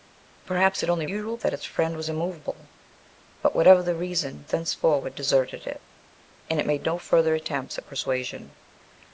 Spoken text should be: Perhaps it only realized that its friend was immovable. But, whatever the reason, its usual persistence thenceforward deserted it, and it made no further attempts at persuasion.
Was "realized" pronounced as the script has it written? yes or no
no